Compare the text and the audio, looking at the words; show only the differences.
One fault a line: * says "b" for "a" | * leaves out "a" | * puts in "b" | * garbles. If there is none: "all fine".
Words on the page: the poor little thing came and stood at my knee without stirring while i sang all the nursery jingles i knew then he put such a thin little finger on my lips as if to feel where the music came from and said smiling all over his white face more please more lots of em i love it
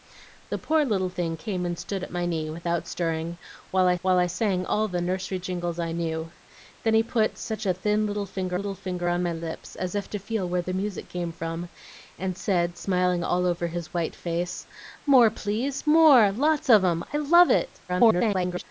* puts in "while i"
* puts in "little finger"
* garbles